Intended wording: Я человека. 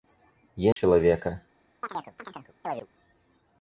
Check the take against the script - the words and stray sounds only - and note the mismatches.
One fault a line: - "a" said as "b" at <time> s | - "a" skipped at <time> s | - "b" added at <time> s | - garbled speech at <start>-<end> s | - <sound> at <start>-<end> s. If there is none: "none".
- dropout at 0.7-0.8 s
- chirp at 1.8-2.9 s